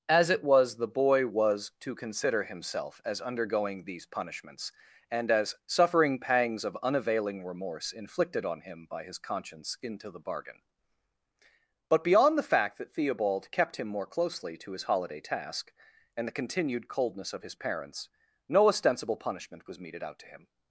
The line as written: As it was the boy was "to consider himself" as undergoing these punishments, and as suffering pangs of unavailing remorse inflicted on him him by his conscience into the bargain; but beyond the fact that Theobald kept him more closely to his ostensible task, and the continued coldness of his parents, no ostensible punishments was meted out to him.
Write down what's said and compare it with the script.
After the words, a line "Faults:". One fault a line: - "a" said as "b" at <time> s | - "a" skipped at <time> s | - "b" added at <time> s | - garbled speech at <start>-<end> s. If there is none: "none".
As it was the boy was "to consider himself" as undergoing these punishments, and as suffering pangs of unavailing remorse inflicted on him by his conscience into the bargain; but beyond the fact that Theobald kept him more closely to his holiday task, and the continued coldness of his parents, no ostensible punishment was meted out to him.
Faults:
- "him" skipped at 8.8 s
- "ostensible" said as "holiday" at 14.8 s
- "punishments" said as "punishment" at 19.2 s